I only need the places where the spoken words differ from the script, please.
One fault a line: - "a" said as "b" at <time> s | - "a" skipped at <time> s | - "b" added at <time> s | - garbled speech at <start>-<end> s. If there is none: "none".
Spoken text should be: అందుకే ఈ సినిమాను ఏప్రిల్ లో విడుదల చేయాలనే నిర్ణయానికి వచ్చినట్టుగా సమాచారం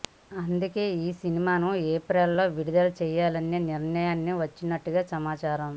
none